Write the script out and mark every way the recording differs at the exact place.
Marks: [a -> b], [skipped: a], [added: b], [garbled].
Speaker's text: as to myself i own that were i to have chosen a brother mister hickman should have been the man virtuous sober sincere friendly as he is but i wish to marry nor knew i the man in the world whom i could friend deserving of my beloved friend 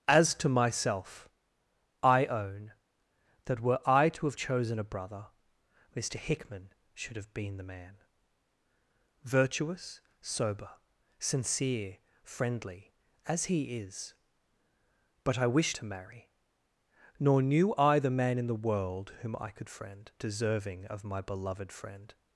as to myself i own that were i to have chosen a brother mister hickman should have been the man virtuous sober sincere friendly as he is but i wish to marry nor knew i the man in the world whom i could friend deserving of my beloved friend